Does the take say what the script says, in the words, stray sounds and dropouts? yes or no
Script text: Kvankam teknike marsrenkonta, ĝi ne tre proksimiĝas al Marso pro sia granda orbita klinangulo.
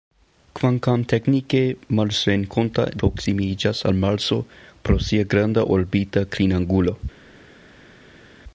no